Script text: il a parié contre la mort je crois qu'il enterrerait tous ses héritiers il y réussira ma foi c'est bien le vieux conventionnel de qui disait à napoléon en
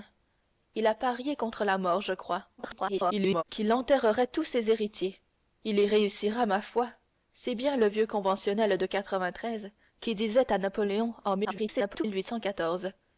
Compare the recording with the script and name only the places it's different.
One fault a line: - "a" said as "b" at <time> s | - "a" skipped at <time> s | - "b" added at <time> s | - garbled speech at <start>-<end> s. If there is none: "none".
- garbled speech at 2.6-3.4 s
- garbled speech at 11.4-12.0 s